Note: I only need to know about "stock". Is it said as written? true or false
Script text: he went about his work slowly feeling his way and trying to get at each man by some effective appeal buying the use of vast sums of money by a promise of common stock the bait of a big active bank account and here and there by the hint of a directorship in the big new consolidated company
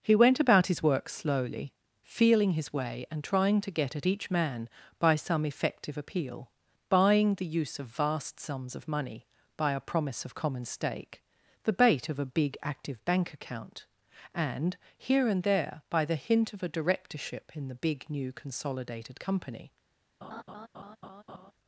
false